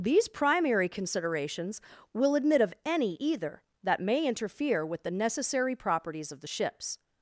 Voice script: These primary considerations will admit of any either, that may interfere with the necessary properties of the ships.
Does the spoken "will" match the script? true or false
true